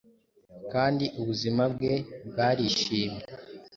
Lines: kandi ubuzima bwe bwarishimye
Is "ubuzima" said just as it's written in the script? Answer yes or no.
yes